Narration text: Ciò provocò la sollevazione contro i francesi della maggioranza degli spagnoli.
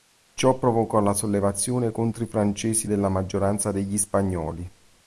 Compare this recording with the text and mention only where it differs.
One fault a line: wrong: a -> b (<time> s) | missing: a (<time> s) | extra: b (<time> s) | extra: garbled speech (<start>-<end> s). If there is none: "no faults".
no faults